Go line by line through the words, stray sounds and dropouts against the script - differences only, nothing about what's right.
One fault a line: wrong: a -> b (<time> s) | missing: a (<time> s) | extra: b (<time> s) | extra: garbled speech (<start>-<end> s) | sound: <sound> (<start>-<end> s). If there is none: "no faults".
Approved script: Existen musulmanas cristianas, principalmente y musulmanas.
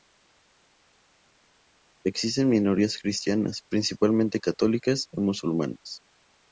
wrong: musulmanas -> minorías (2.5 s)
extra: católicas (4.4 s)